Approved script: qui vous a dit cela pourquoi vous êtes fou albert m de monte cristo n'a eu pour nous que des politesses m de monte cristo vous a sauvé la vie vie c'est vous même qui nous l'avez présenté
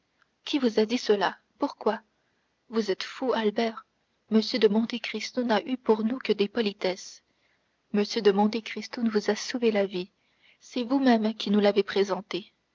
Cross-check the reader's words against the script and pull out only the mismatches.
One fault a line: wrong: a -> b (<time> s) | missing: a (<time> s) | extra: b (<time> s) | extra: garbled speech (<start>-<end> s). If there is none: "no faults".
missing: vie (10.1 s)